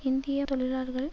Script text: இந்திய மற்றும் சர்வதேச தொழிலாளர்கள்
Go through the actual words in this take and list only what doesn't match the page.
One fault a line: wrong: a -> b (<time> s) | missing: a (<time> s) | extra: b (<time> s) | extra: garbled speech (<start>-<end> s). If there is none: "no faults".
missing: மற்றும் சர்வதேச (0.5 s)